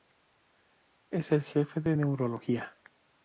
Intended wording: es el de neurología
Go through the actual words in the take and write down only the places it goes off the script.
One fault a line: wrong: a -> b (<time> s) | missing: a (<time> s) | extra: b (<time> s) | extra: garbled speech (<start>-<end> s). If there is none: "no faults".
extra: jefe (1.4 s)